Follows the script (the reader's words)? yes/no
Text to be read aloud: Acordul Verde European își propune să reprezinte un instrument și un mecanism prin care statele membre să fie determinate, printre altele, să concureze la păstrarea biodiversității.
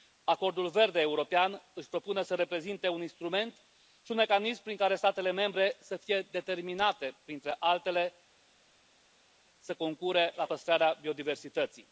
yes